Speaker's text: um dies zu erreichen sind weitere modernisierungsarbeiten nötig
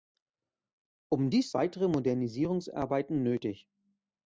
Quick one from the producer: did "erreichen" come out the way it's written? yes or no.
no